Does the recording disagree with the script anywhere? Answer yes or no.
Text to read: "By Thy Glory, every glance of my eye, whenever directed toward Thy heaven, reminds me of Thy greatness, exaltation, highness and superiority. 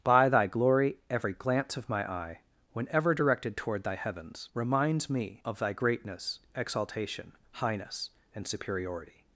yes